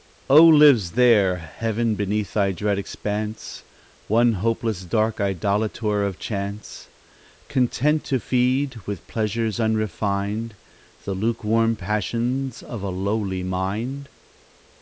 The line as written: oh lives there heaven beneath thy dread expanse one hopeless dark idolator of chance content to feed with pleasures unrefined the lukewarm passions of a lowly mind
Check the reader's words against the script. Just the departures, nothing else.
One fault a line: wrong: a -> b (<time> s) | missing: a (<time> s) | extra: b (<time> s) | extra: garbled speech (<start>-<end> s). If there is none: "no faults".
no faults